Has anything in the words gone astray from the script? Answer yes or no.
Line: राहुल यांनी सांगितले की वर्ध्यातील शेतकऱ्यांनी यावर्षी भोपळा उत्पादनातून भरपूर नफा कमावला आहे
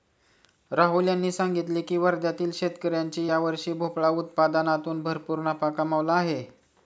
no